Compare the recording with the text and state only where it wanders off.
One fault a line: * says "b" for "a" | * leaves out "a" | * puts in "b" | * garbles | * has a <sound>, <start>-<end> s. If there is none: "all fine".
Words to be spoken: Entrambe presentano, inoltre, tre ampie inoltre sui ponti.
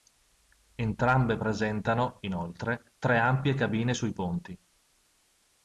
* says "cabine" for "inoltre"